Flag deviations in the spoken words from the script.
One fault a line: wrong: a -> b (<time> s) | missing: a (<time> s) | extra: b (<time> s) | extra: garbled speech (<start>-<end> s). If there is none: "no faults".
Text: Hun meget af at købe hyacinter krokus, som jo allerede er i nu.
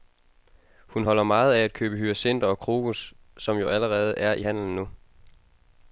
extra: holder (1.0 s)
extra: og (2.5 s)
extra: handelen (4.4 s)